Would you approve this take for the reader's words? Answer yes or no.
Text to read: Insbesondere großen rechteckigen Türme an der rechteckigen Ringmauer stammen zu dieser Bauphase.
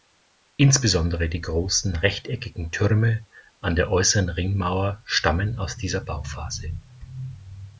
no